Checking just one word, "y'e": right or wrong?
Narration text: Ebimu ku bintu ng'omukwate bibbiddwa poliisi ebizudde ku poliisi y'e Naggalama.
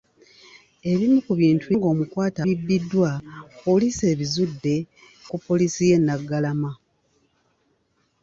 right